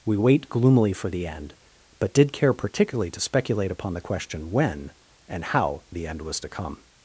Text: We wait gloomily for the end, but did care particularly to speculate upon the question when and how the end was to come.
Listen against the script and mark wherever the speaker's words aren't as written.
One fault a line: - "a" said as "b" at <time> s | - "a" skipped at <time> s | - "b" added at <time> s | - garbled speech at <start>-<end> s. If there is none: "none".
none